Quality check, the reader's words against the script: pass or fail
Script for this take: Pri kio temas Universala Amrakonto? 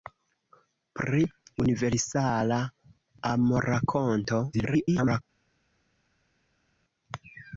fail